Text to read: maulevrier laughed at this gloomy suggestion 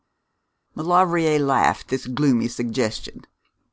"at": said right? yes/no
no